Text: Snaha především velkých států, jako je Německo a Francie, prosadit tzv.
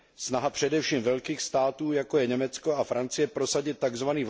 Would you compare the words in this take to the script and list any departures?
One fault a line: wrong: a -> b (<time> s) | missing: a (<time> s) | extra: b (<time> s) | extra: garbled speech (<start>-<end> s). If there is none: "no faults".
no faults